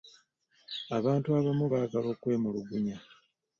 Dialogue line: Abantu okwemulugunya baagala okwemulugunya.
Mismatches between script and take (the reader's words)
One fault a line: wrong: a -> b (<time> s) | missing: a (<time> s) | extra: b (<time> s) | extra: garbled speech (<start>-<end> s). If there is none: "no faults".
wrong: okwemulugunya -> abamu (1.4 s)